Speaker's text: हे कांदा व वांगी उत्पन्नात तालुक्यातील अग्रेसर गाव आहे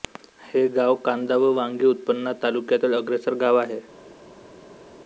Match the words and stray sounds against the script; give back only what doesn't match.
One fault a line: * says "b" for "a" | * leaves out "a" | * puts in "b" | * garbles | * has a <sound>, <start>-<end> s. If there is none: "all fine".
* puts in "गाव"